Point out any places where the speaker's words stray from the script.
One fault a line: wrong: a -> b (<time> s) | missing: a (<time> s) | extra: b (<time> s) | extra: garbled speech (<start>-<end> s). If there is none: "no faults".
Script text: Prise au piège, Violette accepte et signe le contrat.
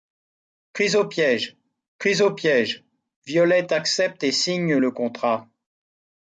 extra: prise au piège (2.0 s)